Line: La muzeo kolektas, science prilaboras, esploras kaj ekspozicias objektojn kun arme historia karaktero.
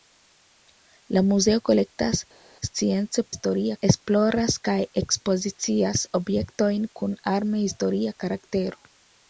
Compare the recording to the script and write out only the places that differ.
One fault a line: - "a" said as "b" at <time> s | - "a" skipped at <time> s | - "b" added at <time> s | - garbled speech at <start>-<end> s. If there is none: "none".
- "prilaboras" said as "historia" at 3.3 s